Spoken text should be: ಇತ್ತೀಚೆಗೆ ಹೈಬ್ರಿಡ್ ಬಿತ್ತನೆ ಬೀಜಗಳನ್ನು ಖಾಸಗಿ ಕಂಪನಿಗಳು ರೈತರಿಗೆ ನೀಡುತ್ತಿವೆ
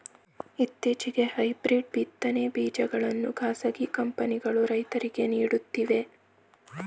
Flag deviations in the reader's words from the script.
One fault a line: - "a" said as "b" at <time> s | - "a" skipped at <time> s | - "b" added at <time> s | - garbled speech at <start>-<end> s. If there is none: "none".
none